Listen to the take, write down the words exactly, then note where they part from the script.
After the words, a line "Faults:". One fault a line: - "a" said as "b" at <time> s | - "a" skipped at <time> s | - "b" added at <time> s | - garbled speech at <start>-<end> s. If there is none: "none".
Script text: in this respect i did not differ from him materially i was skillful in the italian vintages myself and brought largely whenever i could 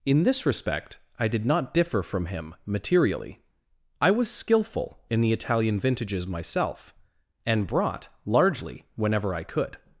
in this respect i did not differ from him materially i was skillful in the italian vintages myself and brought largely whenever i could
Faults:
none